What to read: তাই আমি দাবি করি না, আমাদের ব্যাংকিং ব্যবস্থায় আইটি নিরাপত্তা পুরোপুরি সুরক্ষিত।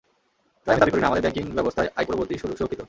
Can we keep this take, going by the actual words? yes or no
no